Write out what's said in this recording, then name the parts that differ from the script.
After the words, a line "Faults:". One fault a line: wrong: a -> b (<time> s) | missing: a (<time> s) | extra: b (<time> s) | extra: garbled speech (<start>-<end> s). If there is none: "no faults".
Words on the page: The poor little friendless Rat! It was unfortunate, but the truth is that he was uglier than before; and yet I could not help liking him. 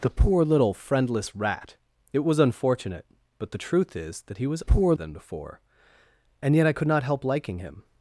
The poor little friendless Rat! It was unfortunate, but the truth is that he was poor than before; and yet I could not help liking him.
Faults:
wrong: uglier -> poor (4.6 s)